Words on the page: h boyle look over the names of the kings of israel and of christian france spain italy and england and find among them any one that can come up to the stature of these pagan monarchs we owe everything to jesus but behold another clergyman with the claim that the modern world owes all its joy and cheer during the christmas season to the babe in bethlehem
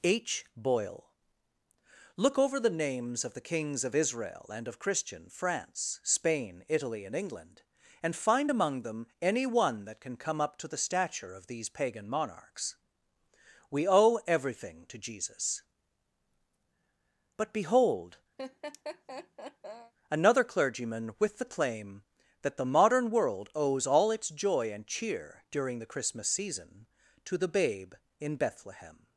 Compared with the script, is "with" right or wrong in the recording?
right